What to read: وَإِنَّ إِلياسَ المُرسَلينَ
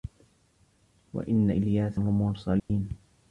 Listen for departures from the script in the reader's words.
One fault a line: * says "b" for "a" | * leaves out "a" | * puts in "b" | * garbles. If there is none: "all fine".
all fine